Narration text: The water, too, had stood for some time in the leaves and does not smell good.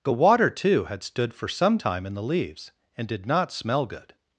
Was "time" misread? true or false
false